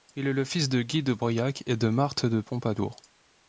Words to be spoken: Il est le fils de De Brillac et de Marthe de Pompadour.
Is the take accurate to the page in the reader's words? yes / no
no